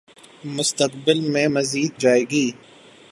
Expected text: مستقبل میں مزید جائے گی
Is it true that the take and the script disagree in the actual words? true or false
false